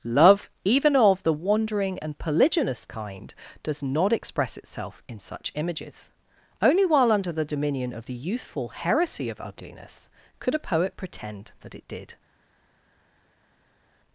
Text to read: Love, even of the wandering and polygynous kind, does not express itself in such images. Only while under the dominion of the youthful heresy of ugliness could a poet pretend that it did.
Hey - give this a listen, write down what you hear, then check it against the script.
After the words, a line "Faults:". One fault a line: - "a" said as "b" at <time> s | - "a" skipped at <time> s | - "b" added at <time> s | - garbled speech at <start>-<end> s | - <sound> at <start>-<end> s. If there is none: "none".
Love, even of the wandering and polygynous kind, does not express itself in such images. Only while under the dominion of the youthful heresy of ugliness could a poet pretend that it did.
Faults:
none